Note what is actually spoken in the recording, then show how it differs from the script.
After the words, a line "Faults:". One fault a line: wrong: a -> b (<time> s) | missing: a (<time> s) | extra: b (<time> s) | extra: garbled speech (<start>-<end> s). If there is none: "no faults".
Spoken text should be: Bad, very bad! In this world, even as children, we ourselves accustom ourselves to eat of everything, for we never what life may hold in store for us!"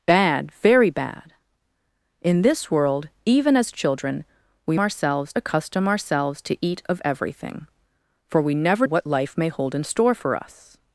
Bad, very bad! In this world, even as children, we ourselves accustom ourselves to eat of everything, for we never what life may hold in store for us!"
Faults:
no faults